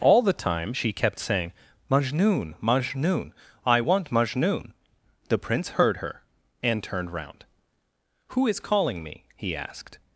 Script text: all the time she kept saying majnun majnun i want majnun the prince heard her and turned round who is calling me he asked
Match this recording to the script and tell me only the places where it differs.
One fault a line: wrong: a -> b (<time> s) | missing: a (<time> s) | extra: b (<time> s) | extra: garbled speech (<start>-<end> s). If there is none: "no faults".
no faults